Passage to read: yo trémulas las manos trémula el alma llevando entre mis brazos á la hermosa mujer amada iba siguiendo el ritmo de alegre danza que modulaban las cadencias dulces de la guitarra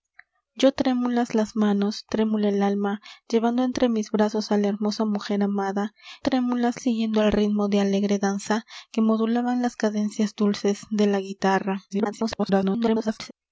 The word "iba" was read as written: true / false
false